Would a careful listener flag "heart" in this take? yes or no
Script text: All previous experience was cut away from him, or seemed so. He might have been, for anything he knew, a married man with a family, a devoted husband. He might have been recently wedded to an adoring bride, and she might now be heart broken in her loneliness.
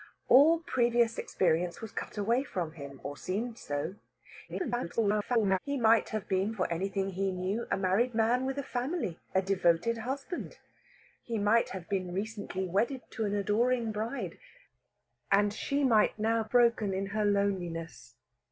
yes